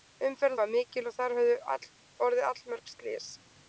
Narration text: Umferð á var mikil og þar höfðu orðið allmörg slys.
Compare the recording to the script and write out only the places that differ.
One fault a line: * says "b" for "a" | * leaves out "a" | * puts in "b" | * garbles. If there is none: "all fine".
all fine